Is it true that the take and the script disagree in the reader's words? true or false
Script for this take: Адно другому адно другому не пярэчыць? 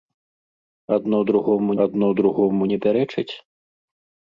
false